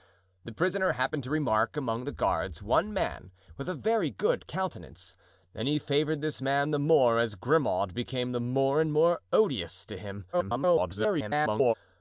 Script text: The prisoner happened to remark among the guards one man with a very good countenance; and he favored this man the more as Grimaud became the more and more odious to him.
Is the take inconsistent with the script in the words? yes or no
yes